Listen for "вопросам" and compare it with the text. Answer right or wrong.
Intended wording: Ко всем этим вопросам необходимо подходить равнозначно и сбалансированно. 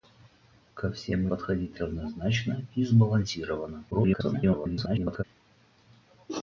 wrong